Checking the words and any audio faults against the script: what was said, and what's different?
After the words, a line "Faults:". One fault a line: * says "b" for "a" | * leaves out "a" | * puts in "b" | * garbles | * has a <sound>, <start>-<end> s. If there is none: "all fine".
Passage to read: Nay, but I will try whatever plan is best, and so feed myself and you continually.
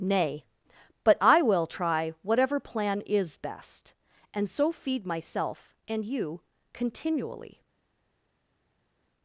Nay, but I will try whatever plan is best, and so feed myself and you continually.
Faults:
all fine